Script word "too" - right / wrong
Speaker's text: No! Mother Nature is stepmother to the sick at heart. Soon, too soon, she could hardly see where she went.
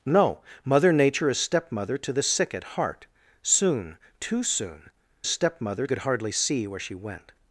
right